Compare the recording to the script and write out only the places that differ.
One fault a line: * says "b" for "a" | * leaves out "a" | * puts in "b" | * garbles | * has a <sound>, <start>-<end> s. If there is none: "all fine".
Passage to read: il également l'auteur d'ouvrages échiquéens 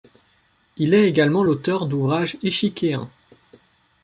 * puts in "est"